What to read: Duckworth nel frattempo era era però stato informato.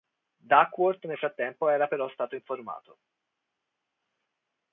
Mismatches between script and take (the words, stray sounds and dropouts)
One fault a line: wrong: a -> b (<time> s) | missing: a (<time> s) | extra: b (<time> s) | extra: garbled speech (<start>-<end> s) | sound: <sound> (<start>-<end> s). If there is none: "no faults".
missing: era (1.9 s)